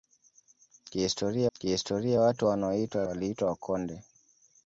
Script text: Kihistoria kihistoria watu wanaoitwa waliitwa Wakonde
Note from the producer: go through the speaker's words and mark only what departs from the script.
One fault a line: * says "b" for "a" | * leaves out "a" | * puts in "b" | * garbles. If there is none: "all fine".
all fine